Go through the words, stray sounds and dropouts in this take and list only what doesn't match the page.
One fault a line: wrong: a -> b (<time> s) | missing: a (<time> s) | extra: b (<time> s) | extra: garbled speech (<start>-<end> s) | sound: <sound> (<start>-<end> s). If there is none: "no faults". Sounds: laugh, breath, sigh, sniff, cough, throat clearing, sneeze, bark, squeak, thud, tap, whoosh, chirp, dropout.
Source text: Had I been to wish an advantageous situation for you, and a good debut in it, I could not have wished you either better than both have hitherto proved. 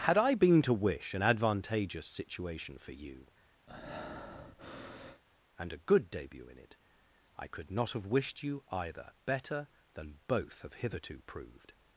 sound: breath (3.7-5.2 s)